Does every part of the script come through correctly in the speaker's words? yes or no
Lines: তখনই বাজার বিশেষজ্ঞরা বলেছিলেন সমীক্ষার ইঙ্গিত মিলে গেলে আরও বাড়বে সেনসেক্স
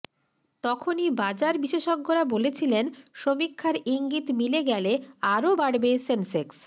yes